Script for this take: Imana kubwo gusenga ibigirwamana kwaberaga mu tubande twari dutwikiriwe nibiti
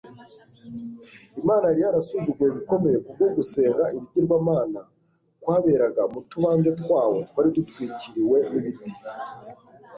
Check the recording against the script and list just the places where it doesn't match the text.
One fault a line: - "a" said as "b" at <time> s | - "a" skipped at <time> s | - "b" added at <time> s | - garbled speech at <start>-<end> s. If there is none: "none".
- "yari yarasuzuguwe bikomeye" added at 1.7 s
- "twawo" added at 6.8 s